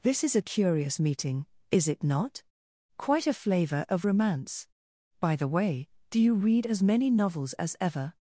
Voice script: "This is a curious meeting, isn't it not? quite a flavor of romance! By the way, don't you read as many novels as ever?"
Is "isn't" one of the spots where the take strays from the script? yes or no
yes